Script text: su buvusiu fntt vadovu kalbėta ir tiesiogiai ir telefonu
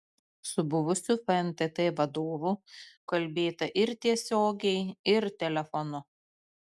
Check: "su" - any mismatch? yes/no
no